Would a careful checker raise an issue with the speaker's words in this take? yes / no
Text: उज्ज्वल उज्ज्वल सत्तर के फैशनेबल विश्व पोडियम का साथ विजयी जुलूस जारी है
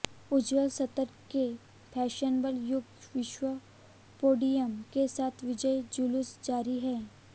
yes